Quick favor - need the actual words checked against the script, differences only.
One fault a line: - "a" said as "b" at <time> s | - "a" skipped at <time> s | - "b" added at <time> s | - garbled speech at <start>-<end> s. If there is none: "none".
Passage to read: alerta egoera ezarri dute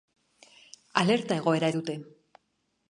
- "ezarri" skipped at 1.7 s